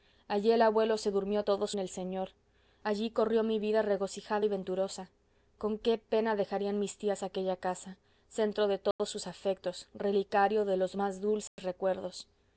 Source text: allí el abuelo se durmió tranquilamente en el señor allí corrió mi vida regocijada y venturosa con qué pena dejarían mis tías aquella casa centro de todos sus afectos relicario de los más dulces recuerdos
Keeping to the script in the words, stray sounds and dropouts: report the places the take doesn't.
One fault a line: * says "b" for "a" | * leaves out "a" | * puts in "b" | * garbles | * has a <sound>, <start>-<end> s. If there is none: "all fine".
* says "todos" for "tranquilamente"
* has a dropout, 8.9-9.0 s
* has a dropout, 11.5-11.6 s